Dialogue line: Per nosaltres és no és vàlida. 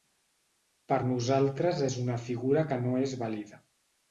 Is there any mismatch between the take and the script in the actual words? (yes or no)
yes